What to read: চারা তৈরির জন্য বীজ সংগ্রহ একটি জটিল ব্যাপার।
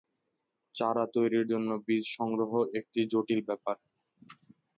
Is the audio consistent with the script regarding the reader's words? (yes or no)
yes